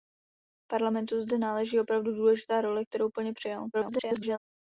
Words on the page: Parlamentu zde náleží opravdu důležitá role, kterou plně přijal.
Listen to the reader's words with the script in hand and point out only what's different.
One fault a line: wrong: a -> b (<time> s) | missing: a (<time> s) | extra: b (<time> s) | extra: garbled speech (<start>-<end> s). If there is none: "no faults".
extra: garbled speech (3.7-4.4 s)